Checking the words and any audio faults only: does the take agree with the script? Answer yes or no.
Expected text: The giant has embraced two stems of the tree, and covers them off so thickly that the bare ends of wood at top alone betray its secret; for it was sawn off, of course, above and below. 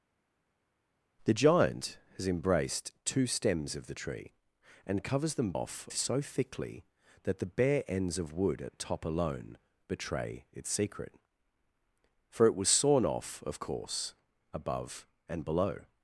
yes